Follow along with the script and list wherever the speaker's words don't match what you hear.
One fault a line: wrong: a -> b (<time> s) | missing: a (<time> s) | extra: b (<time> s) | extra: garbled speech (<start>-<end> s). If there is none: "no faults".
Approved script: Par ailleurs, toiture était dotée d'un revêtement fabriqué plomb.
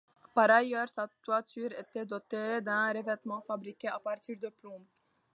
extra: sa (0.9 s)
extra: à partir de (3.9 s)